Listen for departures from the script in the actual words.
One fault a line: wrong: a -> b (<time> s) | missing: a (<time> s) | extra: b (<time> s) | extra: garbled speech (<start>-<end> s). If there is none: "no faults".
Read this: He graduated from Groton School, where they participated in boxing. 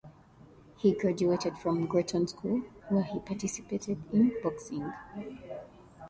wrong: they -> he (3.0 s)